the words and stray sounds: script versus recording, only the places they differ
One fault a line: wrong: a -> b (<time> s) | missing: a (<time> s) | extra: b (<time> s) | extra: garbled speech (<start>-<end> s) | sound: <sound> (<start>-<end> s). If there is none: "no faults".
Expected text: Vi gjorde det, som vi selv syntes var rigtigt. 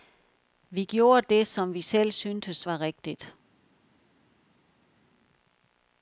no faults